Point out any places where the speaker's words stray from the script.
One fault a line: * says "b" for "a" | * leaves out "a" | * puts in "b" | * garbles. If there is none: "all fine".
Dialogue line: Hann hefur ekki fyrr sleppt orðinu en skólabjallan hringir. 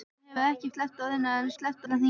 * leaves out "fyrr"
* says "sleppt" for "skólabjallan"